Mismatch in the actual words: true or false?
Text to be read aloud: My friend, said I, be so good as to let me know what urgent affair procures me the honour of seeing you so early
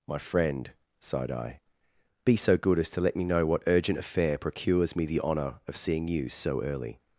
true